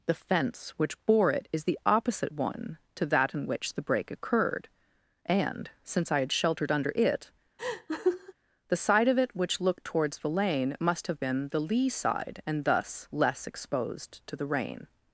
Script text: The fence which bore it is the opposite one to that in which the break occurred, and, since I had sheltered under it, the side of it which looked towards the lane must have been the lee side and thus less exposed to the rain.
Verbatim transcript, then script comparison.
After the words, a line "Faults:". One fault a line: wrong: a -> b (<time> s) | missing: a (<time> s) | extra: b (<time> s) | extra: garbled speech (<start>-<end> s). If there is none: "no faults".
The fence which bore it is the opposite one to that in which the break occurred, and, since I had sheltered under it, the side of it which looked towards the lane must have been the lee side and thus less exposed to the rain.
Faults:
no faults